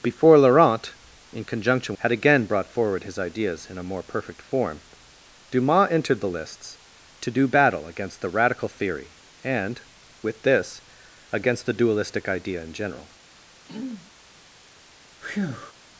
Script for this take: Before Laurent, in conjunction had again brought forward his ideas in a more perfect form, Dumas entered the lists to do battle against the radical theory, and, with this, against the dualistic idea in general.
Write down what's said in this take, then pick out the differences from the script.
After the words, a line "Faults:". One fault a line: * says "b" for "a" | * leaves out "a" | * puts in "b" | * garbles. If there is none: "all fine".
Before Laurent, in conjunction had again brought forward his ideas in a more perfect form, Dumas entered the lists to do battle against the radical theory, and, with this, against the dualistic idea in general.
Faults:
all fine